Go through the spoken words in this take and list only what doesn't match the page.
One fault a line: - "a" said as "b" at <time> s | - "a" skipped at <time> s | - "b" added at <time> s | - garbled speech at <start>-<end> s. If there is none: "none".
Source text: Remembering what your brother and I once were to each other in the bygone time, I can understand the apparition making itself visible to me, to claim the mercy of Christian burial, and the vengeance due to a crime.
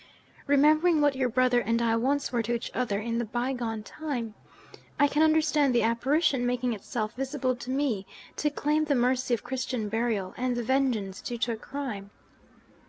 none